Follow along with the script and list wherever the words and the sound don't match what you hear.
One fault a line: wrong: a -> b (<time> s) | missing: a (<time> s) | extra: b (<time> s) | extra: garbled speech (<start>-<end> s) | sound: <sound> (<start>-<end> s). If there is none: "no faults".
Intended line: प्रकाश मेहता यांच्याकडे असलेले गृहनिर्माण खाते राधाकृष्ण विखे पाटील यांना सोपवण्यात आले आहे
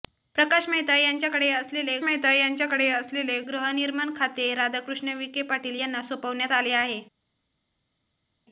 extra: मेहता यांच्याकडे असलेले (2.0 s)